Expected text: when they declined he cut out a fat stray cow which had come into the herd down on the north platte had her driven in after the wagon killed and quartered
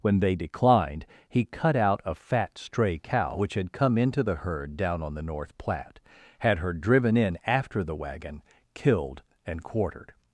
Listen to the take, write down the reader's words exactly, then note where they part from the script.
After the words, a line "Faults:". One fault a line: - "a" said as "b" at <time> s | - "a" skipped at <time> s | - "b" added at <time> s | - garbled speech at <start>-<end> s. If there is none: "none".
when they declined he cut out a fat stray cow which had come into the herd down on the north platte had her driven in after the wagon killed and quartered
Faults:
none